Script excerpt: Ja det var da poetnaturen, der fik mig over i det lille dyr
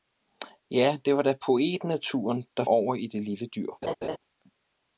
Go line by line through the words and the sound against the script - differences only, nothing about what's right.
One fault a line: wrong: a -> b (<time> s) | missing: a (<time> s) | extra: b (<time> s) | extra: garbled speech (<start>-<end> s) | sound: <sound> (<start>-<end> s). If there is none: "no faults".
missing: fik mig (2.6 s)
sound: laugh (3.8-4.2 s)